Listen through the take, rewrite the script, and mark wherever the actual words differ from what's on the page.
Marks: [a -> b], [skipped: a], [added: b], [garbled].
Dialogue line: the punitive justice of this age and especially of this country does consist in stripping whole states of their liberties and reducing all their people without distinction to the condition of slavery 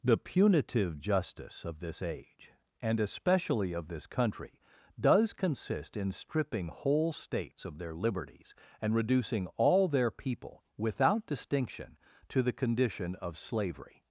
the punitive justice of this age and especially of this country does consist in stripping whole states of their liberties and reducing all their people without distinction to the condition of slavery